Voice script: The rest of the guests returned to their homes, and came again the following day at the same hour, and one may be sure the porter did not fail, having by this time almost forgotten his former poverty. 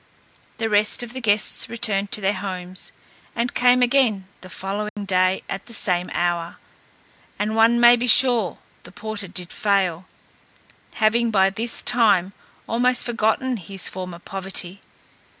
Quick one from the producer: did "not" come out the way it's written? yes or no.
no